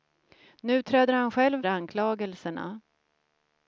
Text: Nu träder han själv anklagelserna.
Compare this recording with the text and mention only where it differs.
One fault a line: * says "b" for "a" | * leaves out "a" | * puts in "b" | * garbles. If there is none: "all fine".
all fine